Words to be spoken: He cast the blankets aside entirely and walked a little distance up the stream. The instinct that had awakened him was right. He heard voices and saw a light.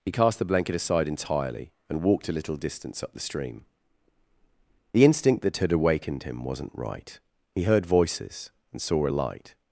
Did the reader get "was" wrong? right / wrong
wrong